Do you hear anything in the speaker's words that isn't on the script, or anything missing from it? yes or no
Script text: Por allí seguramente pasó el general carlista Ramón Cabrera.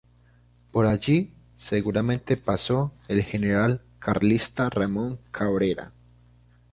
no